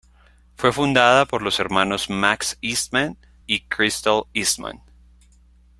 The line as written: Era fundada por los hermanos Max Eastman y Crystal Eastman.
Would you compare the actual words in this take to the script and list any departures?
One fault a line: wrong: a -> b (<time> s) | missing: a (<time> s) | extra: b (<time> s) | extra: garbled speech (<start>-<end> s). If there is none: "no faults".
wrong: Era -> Fue (0.6 s)